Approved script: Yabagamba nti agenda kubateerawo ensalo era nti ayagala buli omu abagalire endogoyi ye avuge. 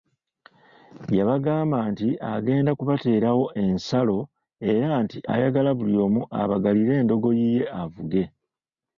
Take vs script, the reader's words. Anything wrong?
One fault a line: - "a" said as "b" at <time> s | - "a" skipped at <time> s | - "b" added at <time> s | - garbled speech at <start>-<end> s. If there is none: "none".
none